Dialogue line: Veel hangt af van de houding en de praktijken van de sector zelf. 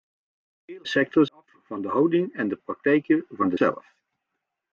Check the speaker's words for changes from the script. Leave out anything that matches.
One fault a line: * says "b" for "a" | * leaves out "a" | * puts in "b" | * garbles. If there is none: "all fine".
* says "sector" for "hangt"
* leaves out "sector"